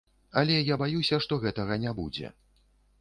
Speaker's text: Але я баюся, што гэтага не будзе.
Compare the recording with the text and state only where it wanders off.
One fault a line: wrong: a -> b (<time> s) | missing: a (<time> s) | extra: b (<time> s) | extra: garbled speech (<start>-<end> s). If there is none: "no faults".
no faults